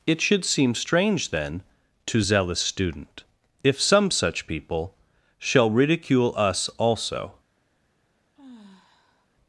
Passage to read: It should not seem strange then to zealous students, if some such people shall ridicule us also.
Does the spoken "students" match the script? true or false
false